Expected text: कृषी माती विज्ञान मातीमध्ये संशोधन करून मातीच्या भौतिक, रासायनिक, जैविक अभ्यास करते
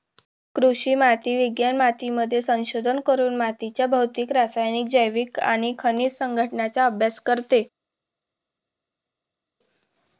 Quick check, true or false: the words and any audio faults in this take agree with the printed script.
false